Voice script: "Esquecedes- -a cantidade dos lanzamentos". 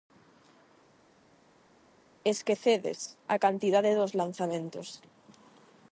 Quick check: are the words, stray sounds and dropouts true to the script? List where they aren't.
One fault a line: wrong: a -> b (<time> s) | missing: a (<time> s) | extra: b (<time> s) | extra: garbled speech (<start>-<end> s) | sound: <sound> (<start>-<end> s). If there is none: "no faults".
no faults